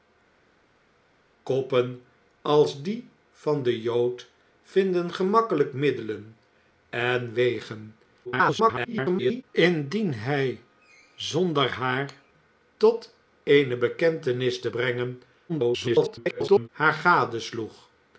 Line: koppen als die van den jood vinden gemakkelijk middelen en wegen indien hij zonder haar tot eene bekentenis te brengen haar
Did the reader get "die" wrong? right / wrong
right